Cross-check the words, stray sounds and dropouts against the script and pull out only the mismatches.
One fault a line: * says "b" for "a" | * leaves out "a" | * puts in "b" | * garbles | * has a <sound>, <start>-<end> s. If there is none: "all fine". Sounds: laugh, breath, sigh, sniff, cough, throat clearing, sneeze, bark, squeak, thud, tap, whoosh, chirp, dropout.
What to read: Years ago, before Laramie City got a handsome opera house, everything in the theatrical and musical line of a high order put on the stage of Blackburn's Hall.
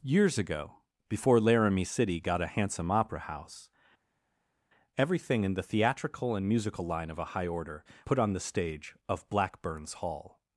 all fine